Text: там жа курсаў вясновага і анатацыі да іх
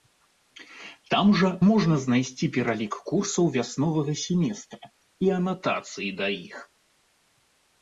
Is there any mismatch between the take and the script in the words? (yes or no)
yes